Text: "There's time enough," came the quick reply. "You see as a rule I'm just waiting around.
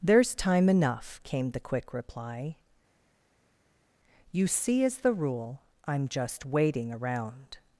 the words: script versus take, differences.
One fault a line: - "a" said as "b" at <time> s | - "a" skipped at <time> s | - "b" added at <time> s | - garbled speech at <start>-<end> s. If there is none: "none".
- "a" said as "the" at 5.0 s